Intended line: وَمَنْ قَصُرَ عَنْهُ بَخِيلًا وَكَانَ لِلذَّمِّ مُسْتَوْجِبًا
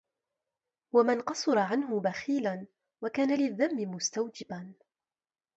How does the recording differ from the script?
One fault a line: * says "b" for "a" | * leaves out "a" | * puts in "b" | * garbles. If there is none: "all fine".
all fine